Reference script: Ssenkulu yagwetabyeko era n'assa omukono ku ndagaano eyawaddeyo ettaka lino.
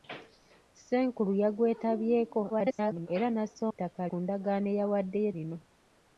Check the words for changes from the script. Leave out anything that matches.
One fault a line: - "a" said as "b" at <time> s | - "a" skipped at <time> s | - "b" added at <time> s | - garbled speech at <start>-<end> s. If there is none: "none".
- garbled speech at 2.5-3.1 s
- "omukono" said as "ettaka" at 3.7 s
- "ettaka" skipped at 5.3 s